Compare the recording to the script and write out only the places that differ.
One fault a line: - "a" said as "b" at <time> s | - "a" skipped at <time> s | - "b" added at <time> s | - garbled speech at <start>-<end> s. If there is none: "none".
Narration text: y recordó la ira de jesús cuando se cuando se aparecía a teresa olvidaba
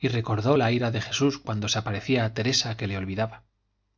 - "cuando se" skipped at 1.8 s
- "que le" added at 2.8 s